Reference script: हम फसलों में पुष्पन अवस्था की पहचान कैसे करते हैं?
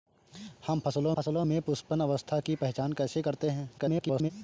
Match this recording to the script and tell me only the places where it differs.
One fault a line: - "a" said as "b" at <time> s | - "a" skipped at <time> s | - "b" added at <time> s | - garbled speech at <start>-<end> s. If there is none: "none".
- "फसलों" added at 1.1 s
- garbled speech at 3.8-4.3 s